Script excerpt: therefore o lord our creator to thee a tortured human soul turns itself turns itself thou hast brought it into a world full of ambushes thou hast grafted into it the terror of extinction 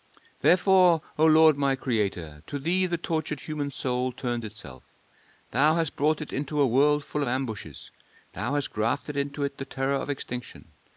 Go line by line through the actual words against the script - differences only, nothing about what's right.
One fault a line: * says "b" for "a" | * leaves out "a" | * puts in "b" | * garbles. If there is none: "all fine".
* says "my" for "our"
* says "the" for "a"
* leaves out "turns itself"